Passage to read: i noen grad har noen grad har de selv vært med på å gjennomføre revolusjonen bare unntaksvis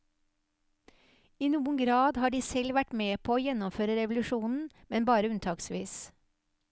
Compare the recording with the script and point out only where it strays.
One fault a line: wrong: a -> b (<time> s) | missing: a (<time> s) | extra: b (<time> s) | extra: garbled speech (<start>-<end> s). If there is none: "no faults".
missing: noen grad har (2.3 s)
extra: men (4.9 s)